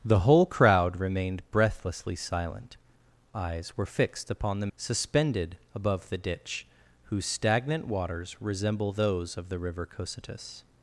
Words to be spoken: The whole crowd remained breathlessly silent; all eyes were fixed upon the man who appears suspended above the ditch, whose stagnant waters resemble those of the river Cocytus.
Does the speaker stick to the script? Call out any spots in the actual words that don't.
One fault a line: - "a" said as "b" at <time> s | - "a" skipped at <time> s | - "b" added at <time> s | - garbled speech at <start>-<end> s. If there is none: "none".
- "all" skipped at 2.8 s
- "man who appears" skipped at 4.7 s